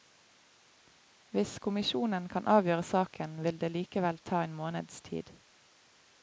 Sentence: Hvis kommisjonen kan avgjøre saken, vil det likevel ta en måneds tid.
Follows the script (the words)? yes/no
yes